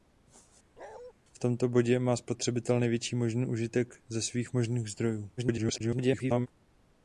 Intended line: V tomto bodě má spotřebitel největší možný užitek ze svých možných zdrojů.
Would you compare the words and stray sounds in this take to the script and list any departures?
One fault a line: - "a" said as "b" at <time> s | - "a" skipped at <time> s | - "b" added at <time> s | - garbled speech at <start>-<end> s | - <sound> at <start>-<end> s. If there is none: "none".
- bark at 0.8-1.1 s
- garbled speech at 5.4-6.5 s